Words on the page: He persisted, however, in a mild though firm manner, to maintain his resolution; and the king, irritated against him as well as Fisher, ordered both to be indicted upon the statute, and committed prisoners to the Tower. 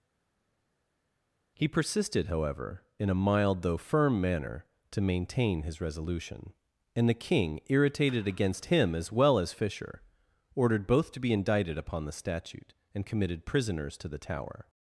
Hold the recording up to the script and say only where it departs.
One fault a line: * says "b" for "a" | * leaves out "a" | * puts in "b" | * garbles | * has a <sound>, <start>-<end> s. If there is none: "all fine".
all fine